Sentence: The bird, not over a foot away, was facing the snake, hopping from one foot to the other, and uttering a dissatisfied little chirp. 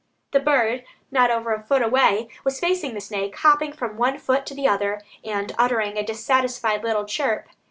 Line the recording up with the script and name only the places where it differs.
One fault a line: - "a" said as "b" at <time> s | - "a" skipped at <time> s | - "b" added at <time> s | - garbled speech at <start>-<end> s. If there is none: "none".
none